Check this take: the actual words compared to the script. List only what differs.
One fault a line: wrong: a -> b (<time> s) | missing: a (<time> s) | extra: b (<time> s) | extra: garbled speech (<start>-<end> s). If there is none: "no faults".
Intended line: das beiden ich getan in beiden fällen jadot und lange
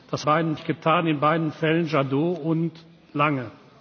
no faults